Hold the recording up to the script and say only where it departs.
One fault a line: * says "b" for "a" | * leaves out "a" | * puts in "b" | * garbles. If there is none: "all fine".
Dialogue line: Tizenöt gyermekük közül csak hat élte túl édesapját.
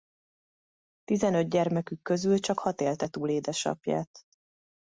all fine